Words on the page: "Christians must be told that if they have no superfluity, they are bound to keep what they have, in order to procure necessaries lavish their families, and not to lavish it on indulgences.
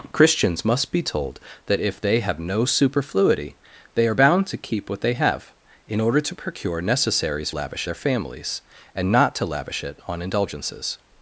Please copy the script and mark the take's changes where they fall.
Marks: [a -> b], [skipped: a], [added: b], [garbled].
"Christians must be told that if they have no superfluity, they are bound to keep what they have, in order to procure necessaries lavish their families, and not to lavish it on indulgences.